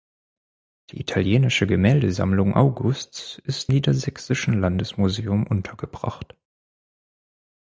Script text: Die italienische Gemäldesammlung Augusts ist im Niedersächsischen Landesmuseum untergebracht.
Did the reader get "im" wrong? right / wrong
wrong